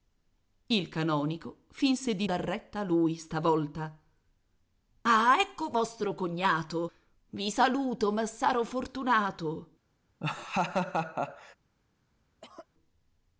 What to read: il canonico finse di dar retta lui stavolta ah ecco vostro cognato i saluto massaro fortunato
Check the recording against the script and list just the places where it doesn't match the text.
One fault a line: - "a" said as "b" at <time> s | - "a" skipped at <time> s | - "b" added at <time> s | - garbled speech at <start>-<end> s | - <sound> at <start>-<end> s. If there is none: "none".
- laugh at 10.2-11.6 s
- cough at 12.4-12.7 s